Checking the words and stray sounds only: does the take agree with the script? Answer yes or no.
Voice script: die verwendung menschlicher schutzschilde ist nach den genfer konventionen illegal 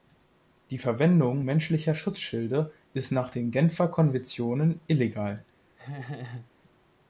no